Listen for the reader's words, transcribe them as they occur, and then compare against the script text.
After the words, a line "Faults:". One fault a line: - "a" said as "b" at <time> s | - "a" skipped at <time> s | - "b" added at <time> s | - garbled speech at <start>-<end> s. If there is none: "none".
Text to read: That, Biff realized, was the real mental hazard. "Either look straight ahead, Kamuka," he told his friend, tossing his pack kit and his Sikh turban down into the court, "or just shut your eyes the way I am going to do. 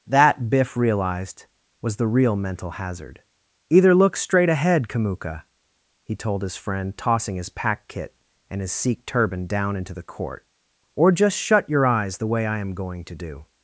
That, Biff realized, was the real mental hazard. "Either look straight ahead, Kamuka," he told his friend, tossing his pack kit and his Sikh turban down into the court, "or just shut your eyes the way I am going to do.
Faults:
none